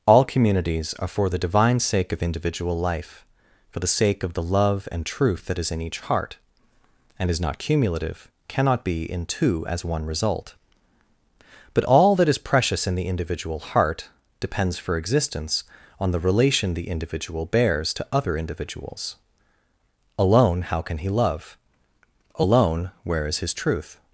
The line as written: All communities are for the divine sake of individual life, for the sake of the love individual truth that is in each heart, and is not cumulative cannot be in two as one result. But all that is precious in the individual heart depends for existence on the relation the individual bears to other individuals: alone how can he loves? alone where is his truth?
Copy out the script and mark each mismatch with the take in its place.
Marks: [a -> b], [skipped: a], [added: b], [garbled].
All communities are for the divine sake of individual life, for the sake of the love [individual -> and] truth that is in each heart, and is not cumulative cannot be in two as one result. But all that is precious in the individual heart depends for existence on the relation the individual bears to other individuals: alone how can he [loves? -> love] alone where is his truth?